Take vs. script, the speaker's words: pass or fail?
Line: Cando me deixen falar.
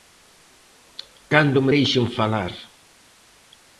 pass